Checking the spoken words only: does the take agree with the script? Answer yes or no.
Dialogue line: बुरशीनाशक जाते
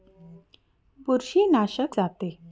yes